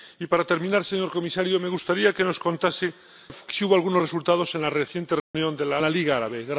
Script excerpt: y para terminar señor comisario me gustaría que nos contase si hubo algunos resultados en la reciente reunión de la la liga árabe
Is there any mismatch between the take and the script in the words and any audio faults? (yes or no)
yes